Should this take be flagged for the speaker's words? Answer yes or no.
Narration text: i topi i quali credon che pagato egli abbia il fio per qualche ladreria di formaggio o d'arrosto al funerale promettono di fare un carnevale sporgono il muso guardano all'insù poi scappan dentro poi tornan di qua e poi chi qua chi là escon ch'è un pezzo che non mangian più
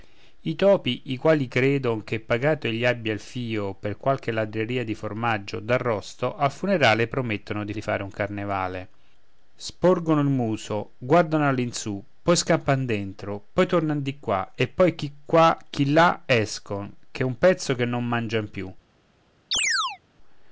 yes